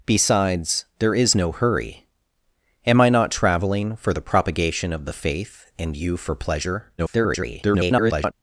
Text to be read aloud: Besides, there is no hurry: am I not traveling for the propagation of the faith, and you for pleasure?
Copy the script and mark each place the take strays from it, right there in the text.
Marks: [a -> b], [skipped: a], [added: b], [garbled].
Besides, there is no hurry: am I not traveling for the propagation of the faith, and you for pleasure? [garbled]